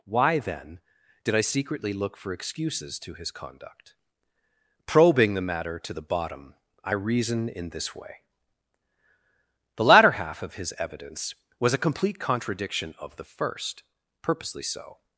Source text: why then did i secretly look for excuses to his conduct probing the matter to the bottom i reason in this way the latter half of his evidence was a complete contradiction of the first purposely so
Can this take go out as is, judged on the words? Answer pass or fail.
pass